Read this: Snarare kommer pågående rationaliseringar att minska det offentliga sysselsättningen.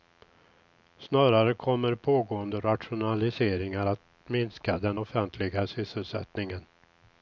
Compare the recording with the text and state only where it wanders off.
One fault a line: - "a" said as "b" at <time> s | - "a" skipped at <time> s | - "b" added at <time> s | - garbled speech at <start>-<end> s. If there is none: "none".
- "det" said as "den" at 4.8 s